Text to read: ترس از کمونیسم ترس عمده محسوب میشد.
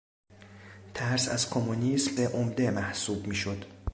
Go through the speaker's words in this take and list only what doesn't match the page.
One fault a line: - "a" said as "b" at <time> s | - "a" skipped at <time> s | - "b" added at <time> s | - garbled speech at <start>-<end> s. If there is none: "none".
- "ترس" skipped at 2.1 s